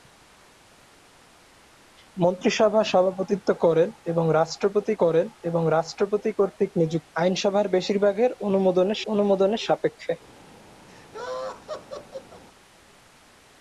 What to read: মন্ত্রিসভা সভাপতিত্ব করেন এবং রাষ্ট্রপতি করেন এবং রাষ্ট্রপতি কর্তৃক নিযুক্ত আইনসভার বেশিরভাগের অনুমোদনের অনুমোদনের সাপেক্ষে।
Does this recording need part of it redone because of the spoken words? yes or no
no